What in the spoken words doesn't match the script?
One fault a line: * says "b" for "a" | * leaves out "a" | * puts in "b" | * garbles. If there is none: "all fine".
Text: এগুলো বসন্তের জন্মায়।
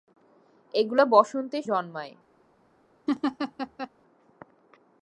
all fine